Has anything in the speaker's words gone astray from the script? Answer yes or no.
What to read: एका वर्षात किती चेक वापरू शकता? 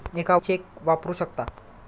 yes